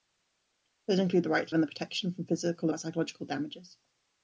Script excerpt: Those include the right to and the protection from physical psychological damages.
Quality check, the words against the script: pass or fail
pass